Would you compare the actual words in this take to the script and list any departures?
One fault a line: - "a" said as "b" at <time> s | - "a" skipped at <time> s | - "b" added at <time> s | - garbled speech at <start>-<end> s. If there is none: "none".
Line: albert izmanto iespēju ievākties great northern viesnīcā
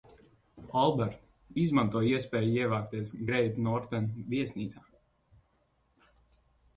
none